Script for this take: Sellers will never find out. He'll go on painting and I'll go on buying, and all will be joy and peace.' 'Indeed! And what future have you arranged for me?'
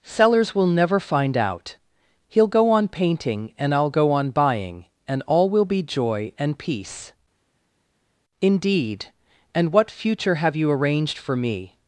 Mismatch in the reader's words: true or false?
false